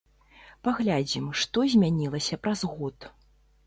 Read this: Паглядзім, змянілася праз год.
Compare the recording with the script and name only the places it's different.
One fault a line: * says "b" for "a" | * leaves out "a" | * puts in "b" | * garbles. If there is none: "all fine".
* puts in "што"